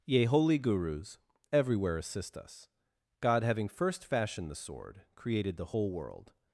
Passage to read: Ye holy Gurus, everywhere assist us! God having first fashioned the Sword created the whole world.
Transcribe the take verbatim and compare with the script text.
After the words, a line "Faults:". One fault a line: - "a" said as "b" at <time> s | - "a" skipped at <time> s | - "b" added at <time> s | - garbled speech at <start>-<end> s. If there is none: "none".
Ye holy Gurus, everywhere assist us! God having first fashioned the Sword created the whole world.
Faults:
none